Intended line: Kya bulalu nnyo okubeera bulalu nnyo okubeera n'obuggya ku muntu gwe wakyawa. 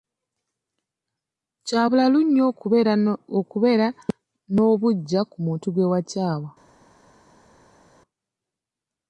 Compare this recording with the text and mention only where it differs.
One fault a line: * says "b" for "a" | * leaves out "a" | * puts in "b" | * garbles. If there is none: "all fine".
* leaves out "bulalu nnyo okubeera"